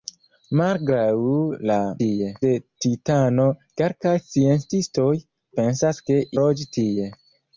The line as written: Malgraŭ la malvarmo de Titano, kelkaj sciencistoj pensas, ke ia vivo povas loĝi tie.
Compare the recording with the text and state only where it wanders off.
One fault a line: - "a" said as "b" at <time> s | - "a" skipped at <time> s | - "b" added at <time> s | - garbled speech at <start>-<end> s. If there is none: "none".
- "malvarmo" said as "tie" at 2.0 s
- "ia vivo povas" skipped at 6.2 s